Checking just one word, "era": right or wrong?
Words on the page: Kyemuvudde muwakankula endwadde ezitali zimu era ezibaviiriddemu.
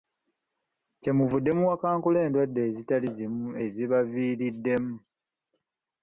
wrong